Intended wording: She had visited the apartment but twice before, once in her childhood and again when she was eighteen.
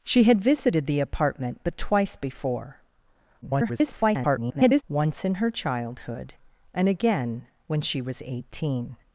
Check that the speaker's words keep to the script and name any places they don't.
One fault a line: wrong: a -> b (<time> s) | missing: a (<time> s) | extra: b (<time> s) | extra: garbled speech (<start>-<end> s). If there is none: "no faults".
extra: garbled speech (3.4-4.8 s)